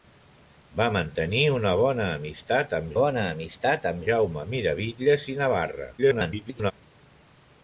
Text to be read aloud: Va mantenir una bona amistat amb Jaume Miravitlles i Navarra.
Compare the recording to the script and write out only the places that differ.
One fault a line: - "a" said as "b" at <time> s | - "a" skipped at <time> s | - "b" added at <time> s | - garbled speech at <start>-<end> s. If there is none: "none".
- "bona amistat amb" added at 3.0 s
- garbled speech at 6.0-6.7 s